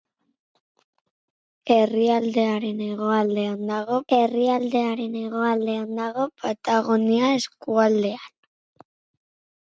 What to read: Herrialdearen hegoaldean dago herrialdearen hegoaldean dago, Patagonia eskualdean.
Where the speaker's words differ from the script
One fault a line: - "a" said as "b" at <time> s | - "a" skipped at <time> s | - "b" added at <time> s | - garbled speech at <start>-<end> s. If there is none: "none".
none